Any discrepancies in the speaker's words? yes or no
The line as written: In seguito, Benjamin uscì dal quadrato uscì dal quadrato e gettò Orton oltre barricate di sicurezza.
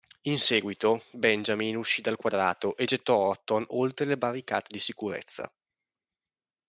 yes